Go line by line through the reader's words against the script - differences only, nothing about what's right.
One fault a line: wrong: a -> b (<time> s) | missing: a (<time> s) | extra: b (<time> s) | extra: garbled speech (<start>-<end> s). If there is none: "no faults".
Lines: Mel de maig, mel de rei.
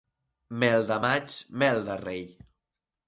no faults